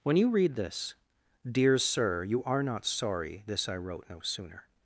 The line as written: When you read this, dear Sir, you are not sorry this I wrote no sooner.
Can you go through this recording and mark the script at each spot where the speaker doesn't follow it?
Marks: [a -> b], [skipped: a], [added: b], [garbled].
When you read this, dear Sir, you are not sorry this I wrote no sooner.